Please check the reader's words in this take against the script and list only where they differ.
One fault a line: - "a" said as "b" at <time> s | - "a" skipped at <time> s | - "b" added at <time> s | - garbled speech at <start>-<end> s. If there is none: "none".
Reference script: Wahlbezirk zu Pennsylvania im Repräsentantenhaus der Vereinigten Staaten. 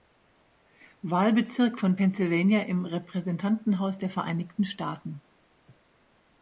- "zu" said as "von" at 1.8 s